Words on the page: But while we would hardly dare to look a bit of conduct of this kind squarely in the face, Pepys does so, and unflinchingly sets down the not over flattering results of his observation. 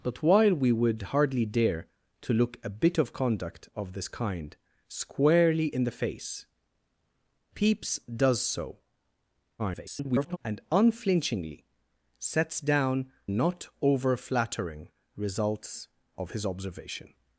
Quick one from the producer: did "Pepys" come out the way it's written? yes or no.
yes